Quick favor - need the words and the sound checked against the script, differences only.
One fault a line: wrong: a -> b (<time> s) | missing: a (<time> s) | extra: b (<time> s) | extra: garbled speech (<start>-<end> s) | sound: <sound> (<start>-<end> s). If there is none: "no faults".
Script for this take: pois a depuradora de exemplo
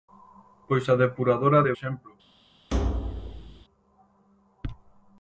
sound: thud (2.7-3.7 s)